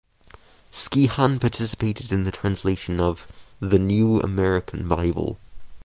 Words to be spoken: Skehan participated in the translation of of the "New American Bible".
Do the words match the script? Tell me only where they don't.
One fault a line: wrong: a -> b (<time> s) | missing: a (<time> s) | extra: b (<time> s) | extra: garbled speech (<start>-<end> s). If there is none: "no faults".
missing: of (3.3 s)